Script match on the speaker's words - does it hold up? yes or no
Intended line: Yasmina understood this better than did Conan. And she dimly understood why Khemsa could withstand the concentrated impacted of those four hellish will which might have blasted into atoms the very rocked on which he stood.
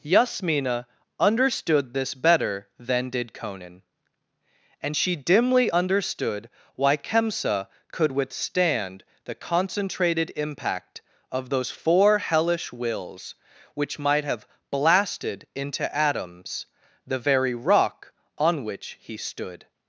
no